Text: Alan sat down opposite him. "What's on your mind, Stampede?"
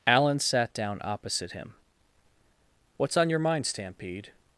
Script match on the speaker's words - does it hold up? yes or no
yes